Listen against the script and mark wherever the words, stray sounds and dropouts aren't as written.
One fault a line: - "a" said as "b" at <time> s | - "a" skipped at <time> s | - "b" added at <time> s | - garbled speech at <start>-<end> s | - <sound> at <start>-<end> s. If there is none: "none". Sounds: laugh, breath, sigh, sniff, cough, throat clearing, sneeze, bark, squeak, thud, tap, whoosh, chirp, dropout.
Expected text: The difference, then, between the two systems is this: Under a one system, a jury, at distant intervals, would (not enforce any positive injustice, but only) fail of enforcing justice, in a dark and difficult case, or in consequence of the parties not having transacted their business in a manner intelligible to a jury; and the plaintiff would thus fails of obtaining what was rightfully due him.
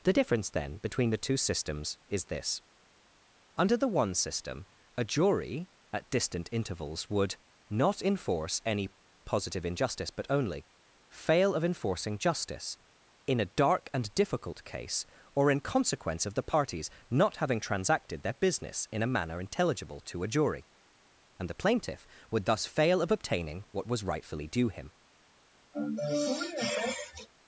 - "a" said as "the" at 3.8 s
- "fails" said as "fail" at 22.6 s
- sniff at 25.7-27.3 s